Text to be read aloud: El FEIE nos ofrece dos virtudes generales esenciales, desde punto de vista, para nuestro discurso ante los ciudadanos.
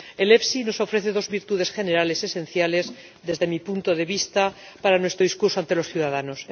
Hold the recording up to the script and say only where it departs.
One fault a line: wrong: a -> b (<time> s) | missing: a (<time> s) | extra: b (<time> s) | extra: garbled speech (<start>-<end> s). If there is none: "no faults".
extra: mi (3.5 s)